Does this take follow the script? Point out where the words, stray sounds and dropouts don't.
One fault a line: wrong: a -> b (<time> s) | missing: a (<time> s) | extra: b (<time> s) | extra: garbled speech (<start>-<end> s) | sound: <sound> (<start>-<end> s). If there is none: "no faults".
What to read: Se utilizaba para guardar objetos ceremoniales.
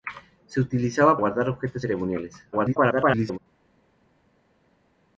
missing: para (1.2 s)
extra: garbled speech (2.5-3.4 s)